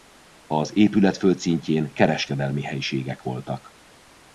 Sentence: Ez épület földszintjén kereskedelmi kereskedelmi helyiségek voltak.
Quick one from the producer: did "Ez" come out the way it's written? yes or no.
no